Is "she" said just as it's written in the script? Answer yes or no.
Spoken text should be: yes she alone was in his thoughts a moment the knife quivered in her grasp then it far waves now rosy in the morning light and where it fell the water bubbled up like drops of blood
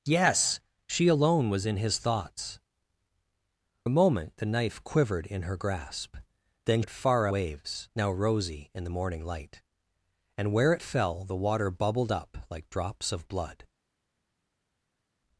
yes